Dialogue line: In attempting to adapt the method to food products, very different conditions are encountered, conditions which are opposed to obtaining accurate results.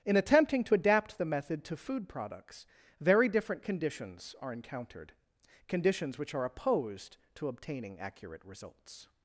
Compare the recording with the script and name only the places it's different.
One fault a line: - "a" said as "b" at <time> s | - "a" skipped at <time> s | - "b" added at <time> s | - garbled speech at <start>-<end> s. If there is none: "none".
none